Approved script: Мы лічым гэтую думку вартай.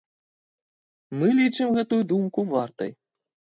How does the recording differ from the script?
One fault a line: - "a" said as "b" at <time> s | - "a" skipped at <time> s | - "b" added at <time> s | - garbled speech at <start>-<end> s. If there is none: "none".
none